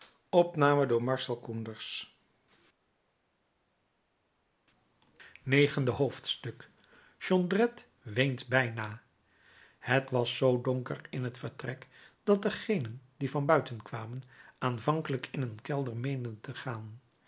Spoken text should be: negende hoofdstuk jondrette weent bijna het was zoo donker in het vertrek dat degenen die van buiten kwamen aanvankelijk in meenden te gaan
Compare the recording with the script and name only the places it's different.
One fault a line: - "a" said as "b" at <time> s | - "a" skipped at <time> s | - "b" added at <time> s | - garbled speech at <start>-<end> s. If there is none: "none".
- "een kelder" added at 15.4 s